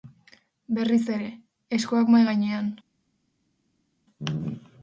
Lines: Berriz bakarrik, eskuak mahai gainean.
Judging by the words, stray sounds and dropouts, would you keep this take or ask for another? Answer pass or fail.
fail